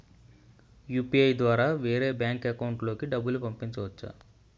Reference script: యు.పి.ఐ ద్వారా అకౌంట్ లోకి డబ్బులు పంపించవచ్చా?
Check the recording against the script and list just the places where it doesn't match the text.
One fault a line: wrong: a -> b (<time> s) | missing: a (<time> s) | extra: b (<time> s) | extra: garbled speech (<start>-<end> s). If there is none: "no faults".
extra: వేరే బ్యాంక్ (1.8 s)